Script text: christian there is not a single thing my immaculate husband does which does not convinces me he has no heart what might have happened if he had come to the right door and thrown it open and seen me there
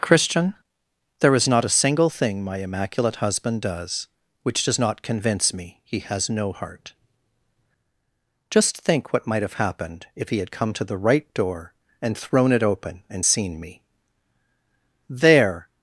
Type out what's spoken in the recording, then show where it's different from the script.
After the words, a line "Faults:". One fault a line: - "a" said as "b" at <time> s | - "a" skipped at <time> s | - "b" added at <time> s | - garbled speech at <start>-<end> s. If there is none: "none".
christian there is not a single thing my immaculate husband does which does not convince me he has no heart just think what might have happened if he had come to the right door and thrown it open and seen me there
Faults:
- "convinces" said as "convince" at 5.0 s
- "just think" added at 8.5 s